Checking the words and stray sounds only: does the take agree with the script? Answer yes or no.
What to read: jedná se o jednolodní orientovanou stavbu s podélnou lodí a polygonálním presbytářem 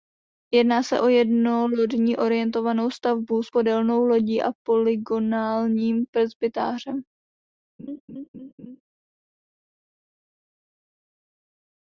no